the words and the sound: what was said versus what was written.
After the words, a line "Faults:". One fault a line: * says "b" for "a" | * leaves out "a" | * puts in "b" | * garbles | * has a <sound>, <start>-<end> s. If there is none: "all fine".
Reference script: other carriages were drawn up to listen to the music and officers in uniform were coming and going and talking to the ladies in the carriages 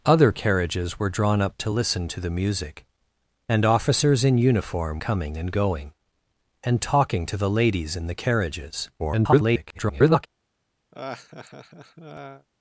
other carriages were drawn up to listen to the music and officers in uniform coming and going and talking to the ladies in the carriages [garbled]
Faults:
* leaves out "were"
* garbles
* has a laugh, 10.9-12.5 s